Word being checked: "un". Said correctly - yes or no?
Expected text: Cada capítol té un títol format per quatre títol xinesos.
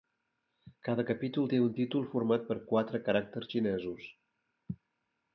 yes